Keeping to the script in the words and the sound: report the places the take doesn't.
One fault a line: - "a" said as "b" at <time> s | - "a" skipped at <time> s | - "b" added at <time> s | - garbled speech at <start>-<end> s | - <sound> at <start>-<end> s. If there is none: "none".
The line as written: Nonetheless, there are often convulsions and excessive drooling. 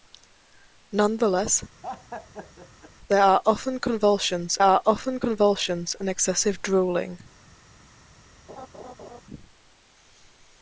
- laugh at 1.8-2.9 s
- "are often convulsions" added at 4.6 s
- laugh at 8.5-9.2 s